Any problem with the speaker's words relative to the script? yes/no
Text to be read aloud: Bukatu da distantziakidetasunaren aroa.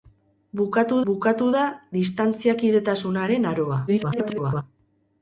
yes